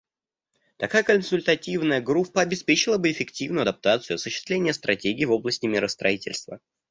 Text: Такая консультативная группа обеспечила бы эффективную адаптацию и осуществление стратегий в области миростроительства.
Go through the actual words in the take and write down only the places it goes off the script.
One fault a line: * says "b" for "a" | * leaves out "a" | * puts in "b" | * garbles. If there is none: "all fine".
all fine